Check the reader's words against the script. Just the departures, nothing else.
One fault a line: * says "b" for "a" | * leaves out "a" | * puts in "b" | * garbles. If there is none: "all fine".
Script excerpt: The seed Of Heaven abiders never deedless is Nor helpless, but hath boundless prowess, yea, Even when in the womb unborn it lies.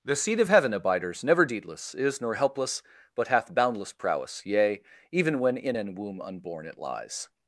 * says "an" for "the"